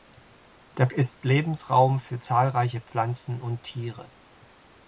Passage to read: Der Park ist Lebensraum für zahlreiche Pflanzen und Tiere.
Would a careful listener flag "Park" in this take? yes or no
yes